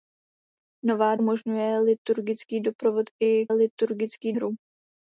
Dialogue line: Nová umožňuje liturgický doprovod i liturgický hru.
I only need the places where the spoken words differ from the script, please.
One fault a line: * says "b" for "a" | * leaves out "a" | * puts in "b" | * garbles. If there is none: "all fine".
all fine